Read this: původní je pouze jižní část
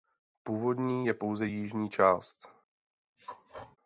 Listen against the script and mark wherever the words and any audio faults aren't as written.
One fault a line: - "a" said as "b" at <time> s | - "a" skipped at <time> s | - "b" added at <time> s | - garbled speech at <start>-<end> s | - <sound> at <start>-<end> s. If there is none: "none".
- throat clearing at 3.2-3.8 s